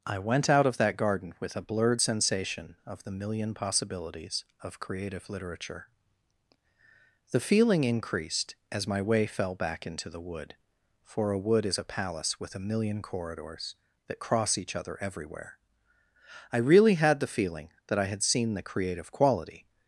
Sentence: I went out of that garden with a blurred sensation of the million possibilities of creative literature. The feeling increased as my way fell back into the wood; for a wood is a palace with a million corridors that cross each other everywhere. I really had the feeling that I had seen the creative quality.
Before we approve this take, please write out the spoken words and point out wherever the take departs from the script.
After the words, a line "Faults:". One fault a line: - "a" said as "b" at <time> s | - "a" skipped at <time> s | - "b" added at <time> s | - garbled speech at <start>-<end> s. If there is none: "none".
I went out of that garden with a blurred sensation of the million possibilities of creative literature. The feeling increased as my way fell back into the wood; for a wood is a palace with a million corridors that cross each other everywhere. I really had the feeling that I had seen the creative quality.
Faults:
none